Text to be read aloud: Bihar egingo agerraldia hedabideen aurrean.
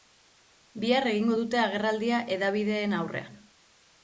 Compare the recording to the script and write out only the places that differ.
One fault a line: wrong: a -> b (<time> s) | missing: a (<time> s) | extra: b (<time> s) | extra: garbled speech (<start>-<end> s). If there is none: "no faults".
extra: dute (1.4 s)